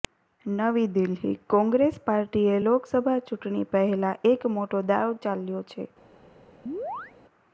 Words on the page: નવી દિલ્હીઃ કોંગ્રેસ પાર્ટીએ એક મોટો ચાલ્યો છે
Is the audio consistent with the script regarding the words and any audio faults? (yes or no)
no